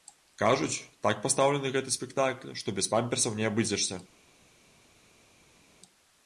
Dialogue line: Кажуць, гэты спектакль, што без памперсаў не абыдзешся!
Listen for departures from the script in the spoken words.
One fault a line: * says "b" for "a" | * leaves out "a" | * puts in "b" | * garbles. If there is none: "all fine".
* puts in "так пастаўлены"